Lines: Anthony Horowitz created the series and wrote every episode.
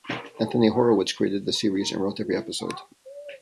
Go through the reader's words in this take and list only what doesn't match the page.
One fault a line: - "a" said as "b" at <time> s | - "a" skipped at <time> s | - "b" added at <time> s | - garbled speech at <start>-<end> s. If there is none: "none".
none